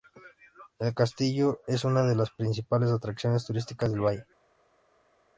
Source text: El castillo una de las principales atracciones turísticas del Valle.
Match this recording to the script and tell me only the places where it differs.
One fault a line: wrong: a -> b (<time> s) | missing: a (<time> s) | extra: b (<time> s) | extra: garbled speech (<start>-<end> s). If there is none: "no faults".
extra: es (1.7 s)